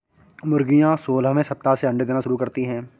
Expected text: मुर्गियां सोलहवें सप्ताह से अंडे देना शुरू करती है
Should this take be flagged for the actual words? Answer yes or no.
no